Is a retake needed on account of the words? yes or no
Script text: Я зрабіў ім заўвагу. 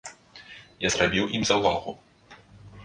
no